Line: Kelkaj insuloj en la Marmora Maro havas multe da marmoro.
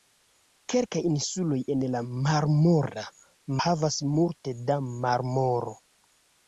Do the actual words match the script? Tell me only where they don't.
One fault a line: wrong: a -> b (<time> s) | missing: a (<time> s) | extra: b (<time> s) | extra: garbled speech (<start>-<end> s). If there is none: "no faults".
missing: Maro (3.0 s)